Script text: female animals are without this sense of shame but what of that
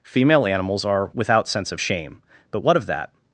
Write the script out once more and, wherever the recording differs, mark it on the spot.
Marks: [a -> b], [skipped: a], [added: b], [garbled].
female animals are without [skipped: this] sense of shame but what of that